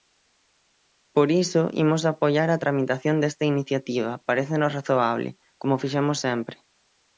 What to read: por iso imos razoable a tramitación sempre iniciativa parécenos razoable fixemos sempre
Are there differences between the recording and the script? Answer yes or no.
yes